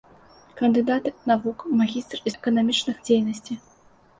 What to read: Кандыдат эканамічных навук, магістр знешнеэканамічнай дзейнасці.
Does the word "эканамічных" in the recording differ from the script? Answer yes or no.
yes